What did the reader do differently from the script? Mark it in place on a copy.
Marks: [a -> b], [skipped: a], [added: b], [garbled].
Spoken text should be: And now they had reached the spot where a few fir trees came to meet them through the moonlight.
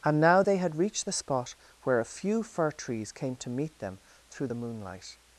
And now they had reached the spot where a few fir trees came to meet them through the moonlight.